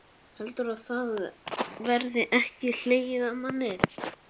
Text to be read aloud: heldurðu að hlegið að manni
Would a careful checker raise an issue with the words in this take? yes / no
yes